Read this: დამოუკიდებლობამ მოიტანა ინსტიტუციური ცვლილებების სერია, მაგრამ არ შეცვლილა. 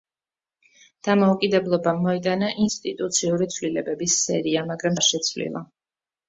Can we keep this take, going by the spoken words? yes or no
yes